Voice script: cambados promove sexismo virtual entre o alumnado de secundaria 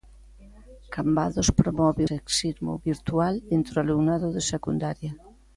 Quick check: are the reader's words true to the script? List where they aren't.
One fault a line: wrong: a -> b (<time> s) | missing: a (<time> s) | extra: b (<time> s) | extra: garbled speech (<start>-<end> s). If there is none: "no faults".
no faults